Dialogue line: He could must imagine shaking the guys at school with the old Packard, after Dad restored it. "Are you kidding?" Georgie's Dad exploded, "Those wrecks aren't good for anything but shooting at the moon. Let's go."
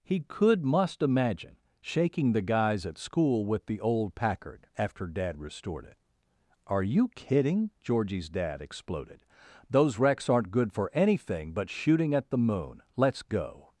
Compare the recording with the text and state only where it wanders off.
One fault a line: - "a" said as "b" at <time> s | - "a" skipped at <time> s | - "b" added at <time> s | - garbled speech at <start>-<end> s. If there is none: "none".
none